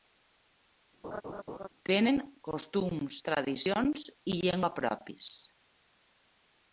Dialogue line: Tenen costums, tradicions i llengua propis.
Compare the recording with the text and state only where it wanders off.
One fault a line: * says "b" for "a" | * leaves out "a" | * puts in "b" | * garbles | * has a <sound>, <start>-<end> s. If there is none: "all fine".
* has a laugh, 1.0-1.7 s